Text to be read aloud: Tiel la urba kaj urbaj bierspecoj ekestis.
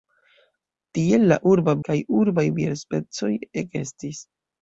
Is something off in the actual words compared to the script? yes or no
no